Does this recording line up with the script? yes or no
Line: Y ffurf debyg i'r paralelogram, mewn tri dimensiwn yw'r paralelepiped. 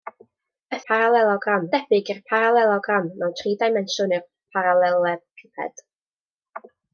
no